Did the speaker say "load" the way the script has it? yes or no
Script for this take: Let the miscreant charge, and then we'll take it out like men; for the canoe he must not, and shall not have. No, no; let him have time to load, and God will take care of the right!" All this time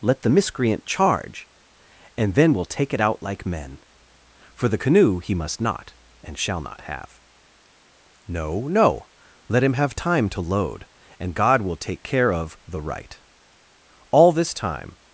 yes